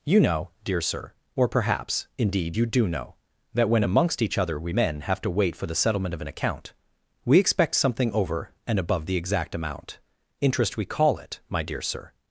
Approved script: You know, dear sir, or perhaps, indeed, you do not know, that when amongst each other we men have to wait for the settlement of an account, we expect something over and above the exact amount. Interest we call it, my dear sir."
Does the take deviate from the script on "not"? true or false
true